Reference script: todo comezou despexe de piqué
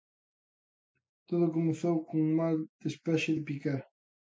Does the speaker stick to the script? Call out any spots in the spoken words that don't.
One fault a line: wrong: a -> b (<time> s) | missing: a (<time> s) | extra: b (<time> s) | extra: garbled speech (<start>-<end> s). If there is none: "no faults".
extra: cun mal (2.1 s)